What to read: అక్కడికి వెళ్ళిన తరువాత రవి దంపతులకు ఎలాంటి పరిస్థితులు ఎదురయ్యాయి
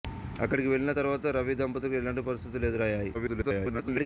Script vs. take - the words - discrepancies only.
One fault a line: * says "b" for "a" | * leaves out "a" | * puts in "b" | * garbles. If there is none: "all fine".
* garbles